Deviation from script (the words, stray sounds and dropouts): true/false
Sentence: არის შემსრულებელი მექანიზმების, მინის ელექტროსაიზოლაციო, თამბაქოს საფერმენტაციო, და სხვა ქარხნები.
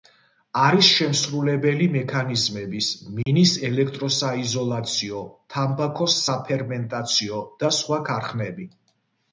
true